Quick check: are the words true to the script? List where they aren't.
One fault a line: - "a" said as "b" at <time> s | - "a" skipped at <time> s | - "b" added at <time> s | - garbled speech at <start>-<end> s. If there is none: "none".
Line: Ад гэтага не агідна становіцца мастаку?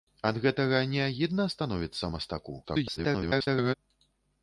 - garbled speech at 2.6-3.7 s